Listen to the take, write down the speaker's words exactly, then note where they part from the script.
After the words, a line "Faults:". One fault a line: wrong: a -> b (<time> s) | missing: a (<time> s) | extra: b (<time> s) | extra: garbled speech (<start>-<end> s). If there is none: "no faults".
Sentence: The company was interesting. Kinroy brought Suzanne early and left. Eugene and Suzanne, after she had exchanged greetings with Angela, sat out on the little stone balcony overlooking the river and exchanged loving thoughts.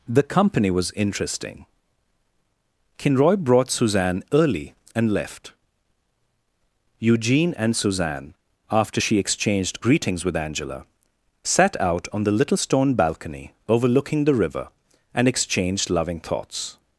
The company was interesting. Kinroy brought Suzanne early and left. Eugene and Suzanne, after she exchanged greetings with Angela, sat out on the little stone balcony overlooking the river and exchanged loving thoughts.
Faults:
missing: had (9.2 s)